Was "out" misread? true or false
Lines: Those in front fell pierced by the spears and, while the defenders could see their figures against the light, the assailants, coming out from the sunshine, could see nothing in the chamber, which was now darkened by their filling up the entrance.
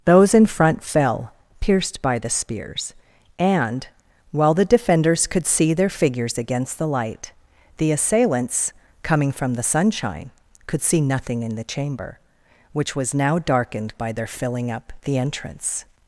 true